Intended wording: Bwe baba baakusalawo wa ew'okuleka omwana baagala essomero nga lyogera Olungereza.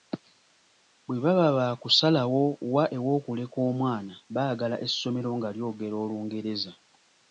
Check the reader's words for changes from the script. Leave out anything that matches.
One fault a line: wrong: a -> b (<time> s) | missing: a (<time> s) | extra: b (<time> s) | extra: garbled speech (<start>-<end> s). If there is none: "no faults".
no faults